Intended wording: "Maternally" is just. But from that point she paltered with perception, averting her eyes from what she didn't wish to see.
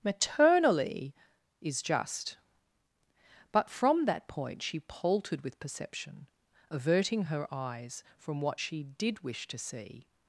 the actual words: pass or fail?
fail